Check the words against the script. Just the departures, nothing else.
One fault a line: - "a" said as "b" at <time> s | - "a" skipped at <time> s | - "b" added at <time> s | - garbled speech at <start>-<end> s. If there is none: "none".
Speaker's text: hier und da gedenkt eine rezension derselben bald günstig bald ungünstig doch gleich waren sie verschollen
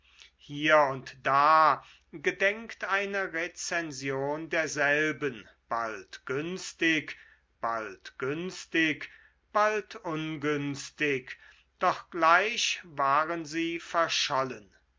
- "günstig bald" added at 8.2 s